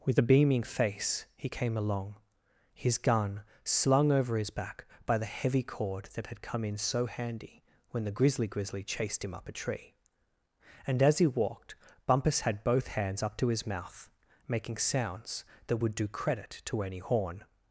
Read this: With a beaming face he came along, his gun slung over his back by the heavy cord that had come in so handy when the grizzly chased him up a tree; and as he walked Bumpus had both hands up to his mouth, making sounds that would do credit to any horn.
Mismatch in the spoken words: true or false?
true